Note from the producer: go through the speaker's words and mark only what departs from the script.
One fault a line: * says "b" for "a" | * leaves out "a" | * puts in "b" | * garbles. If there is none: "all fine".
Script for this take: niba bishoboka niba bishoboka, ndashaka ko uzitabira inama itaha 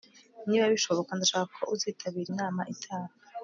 * leaves out "niba bishoboka"